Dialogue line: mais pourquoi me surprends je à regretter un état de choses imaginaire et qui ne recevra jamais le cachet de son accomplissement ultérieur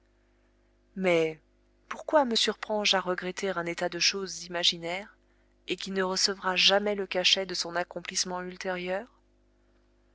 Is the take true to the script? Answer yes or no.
yes